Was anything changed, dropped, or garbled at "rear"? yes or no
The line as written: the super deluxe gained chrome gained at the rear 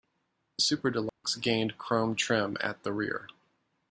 no